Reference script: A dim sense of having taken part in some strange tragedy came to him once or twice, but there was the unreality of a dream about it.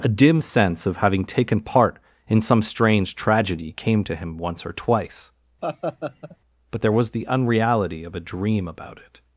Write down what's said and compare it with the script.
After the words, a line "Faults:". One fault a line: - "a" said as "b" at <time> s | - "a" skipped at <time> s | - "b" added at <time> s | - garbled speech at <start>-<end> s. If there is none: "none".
A dim sense of having taken part in some strange tragedy came to him once or twice, but there was the unreality of a dream about it.
Faults:
none